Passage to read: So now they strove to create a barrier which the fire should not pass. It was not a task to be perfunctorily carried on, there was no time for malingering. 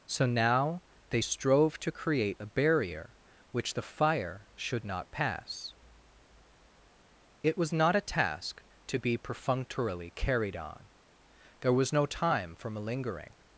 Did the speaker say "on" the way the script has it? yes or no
yes